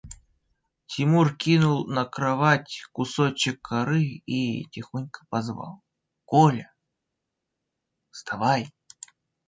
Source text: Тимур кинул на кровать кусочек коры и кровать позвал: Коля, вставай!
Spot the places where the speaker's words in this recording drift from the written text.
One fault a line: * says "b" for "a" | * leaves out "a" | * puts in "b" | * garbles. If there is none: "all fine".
* says "тихонько" for "кровать"